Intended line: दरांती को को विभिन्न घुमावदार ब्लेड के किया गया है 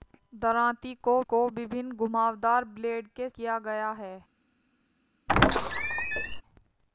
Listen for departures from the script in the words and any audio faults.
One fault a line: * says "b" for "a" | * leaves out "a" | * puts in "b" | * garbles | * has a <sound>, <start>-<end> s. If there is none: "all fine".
* has a squeak, 5.3-6.4 s